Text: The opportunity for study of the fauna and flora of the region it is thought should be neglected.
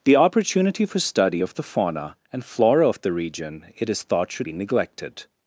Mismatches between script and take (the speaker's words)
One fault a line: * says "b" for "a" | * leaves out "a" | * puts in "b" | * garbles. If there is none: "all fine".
all fine